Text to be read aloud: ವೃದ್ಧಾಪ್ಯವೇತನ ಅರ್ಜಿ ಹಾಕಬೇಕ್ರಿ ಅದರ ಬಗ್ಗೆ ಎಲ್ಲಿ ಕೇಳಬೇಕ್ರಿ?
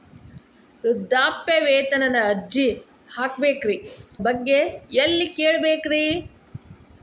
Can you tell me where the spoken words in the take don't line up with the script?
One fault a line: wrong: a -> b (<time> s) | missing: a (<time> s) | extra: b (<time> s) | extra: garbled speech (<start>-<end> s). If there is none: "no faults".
missing: ಅದರ (3.8 s)